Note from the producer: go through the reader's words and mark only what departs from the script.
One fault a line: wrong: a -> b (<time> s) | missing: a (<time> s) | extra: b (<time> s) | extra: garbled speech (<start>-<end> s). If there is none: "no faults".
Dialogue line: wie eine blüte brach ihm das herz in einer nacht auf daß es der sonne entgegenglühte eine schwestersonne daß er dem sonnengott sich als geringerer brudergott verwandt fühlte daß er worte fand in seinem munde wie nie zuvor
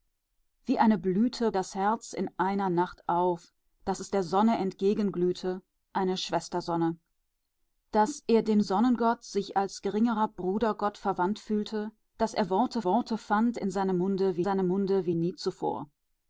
missing: brach ihm (1.5 s)
extra: worte (12.8 s)
extra: seinem munde wie (14.4 s)